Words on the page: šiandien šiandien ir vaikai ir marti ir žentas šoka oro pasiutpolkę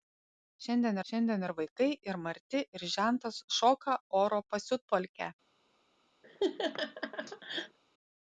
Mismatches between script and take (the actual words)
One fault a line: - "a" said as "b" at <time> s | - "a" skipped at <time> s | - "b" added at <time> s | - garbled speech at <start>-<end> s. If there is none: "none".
none